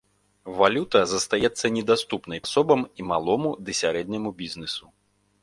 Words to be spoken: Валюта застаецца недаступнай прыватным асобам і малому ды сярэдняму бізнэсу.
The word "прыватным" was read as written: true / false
false